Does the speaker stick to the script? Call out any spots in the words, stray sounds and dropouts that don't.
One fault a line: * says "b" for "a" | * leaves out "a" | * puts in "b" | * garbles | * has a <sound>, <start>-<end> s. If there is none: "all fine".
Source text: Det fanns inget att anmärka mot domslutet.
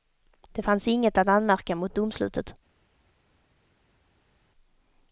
all fine